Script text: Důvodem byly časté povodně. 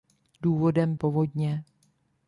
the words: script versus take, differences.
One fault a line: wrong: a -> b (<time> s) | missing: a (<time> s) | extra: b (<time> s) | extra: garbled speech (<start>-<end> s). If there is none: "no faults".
missing: byly časté (0.9 s)